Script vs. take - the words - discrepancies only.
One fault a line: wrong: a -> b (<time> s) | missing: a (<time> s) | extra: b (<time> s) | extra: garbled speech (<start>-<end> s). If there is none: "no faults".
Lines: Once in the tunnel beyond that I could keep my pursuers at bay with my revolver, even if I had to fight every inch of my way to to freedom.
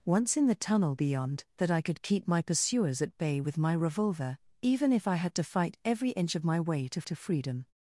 no faults